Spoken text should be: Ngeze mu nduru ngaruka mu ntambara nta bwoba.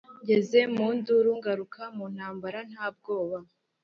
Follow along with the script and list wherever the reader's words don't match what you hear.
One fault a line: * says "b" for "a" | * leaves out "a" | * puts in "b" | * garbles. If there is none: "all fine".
all fine